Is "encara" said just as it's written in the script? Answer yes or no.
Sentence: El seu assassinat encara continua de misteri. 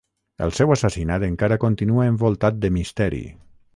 yes